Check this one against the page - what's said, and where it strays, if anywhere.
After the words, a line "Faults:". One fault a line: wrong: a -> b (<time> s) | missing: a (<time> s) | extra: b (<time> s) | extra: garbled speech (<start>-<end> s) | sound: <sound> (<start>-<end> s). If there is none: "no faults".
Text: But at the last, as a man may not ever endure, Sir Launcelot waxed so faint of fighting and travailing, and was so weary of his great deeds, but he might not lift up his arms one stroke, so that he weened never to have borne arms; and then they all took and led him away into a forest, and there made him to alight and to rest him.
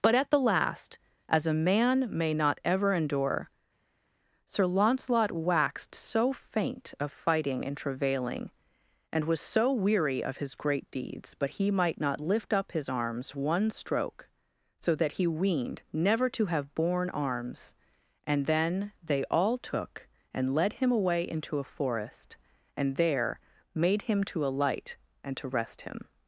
But at the last, as a man may not ever endure, Sir Launcelot waxed so faint of fighting and travailing, and was so weary of his great deeds, but he might not lift up his arms one stroke, so that he weened never to have borne arms; and then they all took and led him away into a forest, and there made him to alight and to rest him.
Faults:
no faults